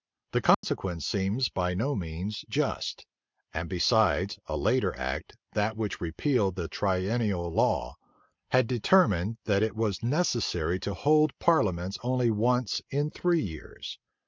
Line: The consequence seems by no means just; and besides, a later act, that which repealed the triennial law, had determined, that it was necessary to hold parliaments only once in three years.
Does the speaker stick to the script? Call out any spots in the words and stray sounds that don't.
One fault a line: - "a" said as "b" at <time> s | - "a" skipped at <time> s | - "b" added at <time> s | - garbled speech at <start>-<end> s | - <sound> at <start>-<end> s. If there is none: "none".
- dropout at 0.5-0.6 s